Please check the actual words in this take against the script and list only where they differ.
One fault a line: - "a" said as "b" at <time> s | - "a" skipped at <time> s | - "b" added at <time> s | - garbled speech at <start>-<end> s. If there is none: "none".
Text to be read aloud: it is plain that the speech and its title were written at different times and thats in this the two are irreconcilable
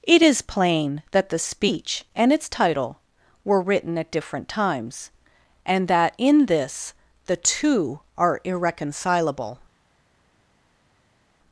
- "thats" said as "that" at 5.9 s